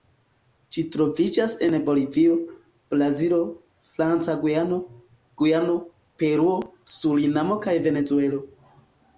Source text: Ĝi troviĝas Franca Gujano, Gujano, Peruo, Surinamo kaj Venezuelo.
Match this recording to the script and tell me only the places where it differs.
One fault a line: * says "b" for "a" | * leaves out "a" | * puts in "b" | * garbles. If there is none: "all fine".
* puts in "en Bolivio Brazilo"